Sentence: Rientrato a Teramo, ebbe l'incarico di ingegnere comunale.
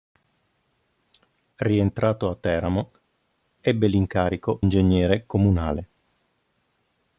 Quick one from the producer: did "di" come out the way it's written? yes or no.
no